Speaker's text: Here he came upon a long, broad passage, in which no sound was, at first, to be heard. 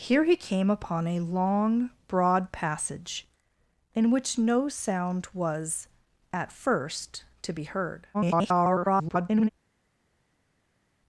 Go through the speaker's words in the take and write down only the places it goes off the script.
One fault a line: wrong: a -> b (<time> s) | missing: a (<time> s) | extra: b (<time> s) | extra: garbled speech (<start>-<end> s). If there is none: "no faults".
extra: garbled speech (8.1-9.5 s)